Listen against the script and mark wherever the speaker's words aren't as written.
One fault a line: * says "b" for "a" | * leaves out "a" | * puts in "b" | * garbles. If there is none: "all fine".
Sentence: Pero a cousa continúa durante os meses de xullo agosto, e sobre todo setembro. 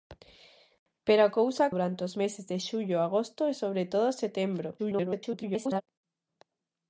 * leaves out "continúa"
* garbles